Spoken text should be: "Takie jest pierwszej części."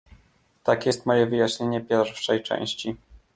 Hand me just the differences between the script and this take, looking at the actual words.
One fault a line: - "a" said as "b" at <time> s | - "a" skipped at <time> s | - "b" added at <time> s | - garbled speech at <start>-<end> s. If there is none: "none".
- "moje wyjaśnienie" added at 1.1 s